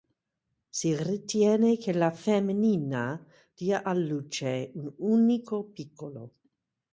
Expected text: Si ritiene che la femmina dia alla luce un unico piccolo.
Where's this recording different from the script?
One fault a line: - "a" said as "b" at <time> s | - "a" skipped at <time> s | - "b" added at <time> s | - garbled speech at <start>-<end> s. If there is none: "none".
none